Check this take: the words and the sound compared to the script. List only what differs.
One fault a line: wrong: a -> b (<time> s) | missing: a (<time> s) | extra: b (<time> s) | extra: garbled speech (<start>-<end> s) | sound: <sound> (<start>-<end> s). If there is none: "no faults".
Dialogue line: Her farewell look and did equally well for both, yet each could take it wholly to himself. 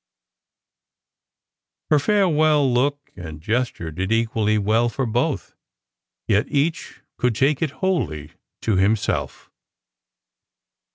extra: gesture (3.4 s)